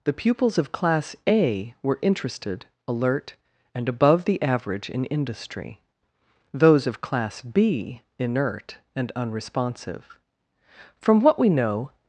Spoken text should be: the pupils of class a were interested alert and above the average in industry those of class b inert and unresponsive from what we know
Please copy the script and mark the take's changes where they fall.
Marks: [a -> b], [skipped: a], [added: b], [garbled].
the pupils of class a were interested alert and above the average in industry those of class b inert and unresponsive from what we know